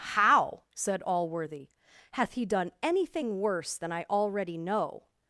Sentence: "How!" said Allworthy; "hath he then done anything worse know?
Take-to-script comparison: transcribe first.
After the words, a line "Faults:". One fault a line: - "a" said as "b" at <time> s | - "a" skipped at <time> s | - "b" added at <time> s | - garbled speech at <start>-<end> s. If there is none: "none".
"How!" said Allworthy; "hath he done anything worse than I already know?
Faults:
- "then" skipped at 2.4 s
- "than I already" added at 3.8 s